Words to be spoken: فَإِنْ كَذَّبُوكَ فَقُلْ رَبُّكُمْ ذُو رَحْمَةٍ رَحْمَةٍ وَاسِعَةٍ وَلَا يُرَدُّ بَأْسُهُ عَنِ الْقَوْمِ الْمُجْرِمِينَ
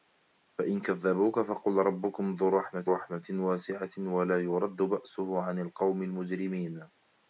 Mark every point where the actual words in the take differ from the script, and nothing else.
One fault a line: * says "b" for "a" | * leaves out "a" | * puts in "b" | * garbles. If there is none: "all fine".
all fine